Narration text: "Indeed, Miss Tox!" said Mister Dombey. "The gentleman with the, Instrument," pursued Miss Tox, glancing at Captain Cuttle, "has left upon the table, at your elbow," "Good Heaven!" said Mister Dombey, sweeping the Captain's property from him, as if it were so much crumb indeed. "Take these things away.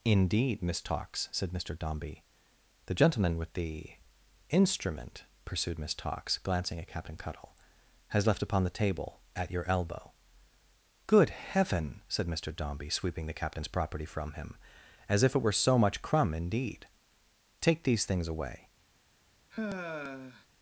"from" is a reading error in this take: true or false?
false